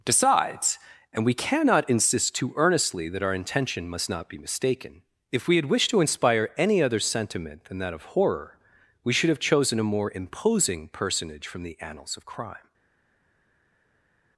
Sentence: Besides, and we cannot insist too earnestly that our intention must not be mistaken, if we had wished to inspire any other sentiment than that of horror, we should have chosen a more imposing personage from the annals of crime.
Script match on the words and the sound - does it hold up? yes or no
no